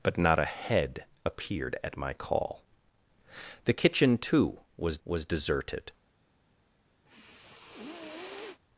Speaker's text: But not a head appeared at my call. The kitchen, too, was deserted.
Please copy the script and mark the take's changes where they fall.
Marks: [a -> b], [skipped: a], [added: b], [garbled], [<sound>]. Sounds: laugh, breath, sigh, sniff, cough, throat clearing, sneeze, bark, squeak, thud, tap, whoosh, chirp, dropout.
But not a head appeared at my call. The kitchen, too, was [added: was] deserted. [sniff]